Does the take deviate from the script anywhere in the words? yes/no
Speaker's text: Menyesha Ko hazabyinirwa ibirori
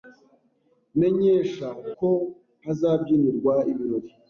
no